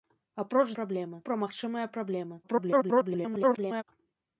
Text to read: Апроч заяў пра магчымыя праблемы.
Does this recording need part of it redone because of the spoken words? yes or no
yes